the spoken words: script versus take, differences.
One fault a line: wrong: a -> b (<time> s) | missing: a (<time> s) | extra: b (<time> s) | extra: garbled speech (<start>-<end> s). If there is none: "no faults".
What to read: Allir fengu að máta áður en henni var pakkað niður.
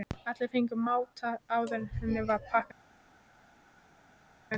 no faults